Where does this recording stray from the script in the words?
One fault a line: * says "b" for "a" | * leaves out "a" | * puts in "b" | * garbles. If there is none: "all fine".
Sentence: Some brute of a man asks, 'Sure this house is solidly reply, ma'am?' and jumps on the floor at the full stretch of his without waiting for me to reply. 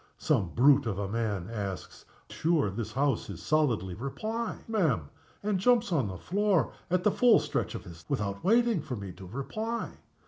all fine